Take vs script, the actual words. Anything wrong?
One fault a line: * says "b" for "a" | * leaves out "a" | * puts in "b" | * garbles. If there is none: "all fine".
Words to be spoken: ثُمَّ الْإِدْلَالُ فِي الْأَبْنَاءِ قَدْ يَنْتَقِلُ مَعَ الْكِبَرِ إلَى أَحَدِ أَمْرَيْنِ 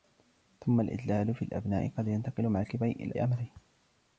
* leaves out "أَحَدِ"